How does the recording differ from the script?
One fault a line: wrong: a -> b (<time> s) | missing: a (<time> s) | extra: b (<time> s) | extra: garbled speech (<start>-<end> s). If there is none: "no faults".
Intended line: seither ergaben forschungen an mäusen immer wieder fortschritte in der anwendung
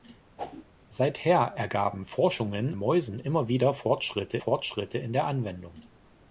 missing: an (2.7 s)
extra: fortschritte (4.4 s)